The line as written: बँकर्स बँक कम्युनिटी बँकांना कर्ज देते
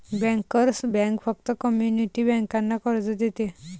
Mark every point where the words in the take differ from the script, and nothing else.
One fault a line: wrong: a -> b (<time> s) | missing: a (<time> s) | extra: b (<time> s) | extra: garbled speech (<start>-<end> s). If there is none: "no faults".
extra: फक्त (1.2 s)